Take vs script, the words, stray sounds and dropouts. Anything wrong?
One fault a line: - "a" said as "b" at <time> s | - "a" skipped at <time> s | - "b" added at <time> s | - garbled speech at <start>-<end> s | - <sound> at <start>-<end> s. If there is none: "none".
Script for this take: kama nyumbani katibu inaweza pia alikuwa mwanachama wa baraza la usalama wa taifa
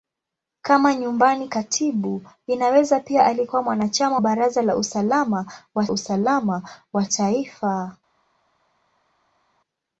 - "wa" skipped at 4.2 s
- "usalama wa" added at 5.9 s